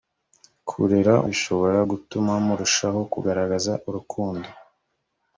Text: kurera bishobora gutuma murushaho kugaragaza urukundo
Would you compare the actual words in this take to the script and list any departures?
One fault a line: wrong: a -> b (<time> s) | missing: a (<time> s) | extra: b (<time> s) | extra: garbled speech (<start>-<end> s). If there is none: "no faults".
no faults